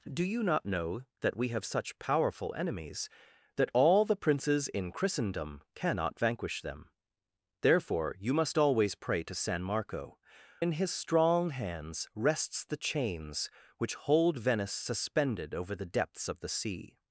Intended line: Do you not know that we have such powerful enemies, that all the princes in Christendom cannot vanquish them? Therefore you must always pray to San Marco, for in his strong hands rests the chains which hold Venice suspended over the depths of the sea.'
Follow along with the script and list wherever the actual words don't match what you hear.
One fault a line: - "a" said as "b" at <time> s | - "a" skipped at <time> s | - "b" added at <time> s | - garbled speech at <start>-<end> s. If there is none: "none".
- "for" skipped at 10.2 s